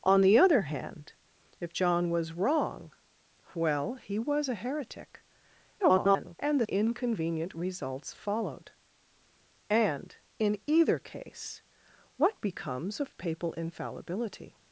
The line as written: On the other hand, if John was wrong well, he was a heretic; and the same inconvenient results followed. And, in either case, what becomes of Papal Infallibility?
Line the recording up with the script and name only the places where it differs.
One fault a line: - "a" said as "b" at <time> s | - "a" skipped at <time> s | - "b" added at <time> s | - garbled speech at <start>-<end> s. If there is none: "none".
- garbled speech at 5.8-6.4 s
- "same" skipped at 6.7 s